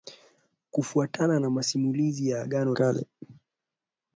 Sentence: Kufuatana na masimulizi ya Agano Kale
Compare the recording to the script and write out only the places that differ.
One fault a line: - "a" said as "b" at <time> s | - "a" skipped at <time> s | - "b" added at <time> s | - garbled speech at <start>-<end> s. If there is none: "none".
none